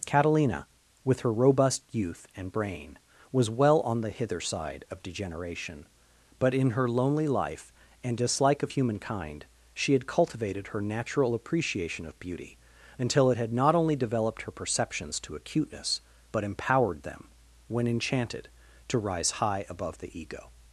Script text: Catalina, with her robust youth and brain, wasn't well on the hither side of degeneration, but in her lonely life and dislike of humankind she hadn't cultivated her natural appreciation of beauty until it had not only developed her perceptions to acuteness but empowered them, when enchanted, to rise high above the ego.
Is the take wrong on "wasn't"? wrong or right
wrong